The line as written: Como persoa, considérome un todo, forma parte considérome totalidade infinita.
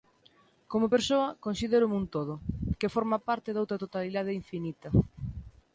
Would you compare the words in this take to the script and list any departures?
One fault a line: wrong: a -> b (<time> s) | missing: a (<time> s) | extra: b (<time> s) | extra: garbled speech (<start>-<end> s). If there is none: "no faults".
extra: que (2.8 s)
wrong: considérome -> doutra (3.5 s)